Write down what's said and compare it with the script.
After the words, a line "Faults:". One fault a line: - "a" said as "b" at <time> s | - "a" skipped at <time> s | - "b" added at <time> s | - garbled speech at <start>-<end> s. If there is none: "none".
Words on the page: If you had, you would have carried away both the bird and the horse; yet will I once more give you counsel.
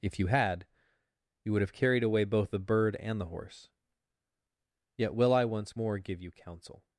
If you had, you would have carried away both the bird and the horse; yet will I once more give you counsel.
Faults:
none